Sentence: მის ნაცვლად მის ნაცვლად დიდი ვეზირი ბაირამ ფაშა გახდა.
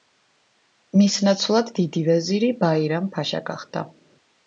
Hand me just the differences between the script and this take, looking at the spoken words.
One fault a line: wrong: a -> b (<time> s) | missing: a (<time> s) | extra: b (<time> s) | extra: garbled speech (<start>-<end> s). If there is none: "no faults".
missing: მის ნაცვლად (1.7 s)